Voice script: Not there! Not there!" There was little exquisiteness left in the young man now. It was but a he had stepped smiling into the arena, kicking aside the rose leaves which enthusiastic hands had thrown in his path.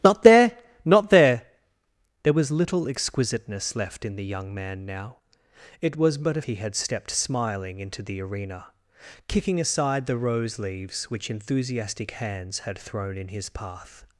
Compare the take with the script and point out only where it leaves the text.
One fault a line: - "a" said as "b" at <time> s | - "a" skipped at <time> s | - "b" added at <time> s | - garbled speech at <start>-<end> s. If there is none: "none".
none